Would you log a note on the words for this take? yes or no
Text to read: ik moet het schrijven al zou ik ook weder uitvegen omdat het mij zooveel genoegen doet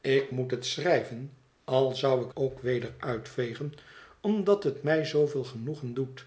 no